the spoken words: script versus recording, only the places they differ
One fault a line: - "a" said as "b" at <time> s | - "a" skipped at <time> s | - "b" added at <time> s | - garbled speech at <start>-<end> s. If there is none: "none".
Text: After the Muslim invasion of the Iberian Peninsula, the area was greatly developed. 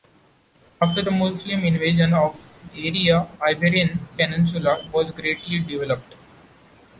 - "the" said as "area" at 2.7 s
- "the area" skipped at 4.8 s